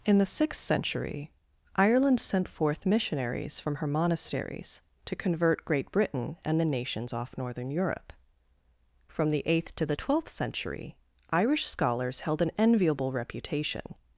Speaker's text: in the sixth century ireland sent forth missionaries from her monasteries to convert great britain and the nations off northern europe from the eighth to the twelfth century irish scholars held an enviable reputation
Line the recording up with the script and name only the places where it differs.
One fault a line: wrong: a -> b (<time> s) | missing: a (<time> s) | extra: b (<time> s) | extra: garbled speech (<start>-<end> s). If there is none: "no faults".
no faults